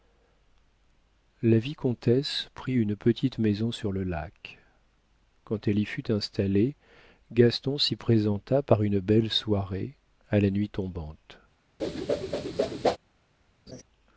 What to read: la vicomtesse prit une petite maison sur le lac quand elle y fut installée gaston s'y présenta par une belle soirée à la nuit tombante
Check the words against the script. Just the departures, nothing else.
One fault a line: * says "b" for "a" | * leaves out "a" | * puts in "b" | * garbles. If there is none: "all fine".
all fine